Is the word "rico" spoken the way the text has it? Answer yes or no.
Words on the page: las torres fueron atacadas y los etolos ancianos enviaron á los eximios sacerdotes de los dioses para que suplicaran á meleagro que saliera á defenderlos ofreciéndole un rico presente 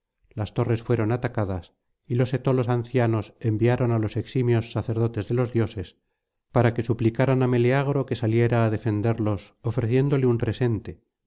no